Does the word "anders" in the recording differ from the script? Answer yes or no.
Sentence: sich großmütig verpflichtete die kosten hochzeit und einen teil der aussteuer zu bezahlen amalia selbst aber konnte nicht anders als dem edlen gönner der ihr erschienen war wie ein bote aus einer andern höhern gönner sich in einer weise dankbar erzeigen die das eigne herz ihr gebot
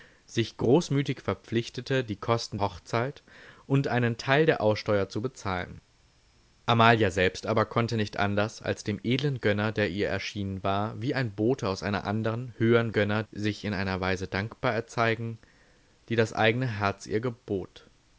no